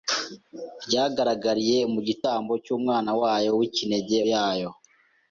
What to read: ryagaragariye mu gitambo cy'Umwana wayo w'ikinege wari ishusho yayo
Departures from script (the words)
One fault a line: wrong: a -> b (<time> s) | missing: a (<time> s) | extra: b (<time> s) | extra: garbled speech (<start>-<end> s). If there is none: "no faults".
missing: wari ishusho (4.2 s)